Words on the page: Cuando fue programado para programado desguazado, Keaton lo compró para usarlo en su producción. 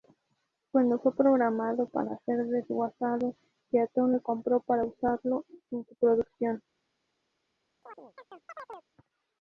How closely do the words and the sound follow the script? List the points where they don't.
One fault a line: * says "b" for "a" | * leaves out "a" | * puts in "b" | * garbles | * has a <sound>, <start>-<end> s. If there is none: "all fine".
* says "ser" for "programado"
* has a chirp, 7.8-8.9 s